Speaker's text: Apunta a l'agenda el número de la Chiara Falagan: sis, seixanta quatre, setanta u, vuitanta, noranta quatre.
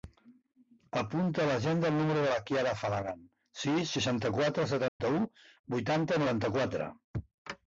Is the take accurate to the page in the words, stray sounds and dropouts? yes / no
no